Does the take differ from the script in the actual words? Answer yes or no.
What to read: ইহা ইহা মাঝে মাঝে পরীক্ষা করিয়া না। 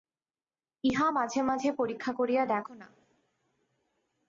yes